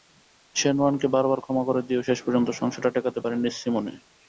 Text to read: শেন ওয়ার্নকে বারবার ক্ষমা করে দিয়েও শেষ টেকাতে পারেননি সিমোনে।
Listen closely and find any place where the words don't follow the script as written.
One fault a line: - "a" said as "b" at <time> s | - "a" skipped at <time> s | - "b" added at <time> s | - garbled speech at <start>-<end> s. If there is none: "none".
- "পর্যন্ত সংসারটা" added at 2.2 s